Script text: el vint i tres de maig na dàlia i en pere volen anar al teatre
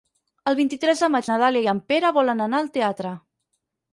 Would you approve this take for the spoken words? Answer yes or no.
yes